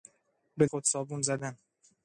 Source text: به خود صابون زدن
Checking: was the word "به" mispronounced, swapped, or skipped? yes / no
no